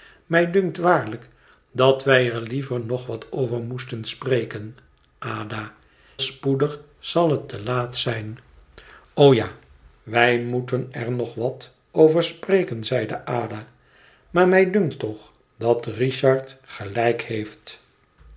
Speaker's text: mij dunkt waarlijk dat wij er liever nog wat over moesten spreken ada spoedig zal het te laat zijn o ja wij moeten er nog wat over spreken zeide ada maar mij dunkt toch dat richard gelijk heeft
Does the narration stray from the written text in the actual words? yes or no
no